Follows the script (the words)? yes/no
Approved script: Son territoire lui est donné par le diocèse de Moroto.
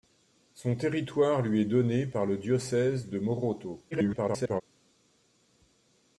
no